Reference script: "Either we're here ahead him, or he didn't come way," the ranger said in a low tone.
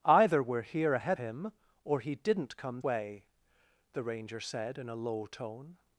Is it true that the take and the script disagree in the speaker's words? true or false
false